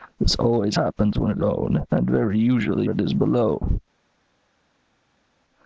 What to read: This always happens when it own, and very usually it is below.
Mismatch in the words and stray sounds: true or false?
false